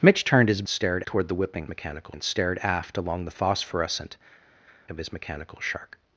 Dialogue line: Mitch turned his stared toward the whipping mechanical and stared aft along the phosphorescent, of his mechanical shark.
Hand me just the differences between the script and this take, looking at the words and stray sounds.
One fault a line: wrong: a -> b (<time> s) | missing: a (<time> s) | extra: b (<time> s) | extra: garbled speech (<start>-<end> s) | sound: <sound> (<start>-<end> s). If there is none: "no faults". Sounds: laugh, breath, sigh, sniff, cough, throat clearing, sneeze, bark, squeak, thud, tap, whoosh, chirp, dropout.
no faults